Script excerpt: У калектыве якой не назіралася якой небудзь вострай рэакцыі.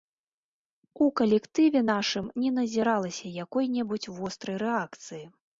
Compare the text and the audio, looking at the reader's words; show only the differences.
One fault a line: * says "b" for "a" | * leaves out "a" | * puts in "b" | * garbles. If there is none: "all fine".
* says "нашым" for "якой"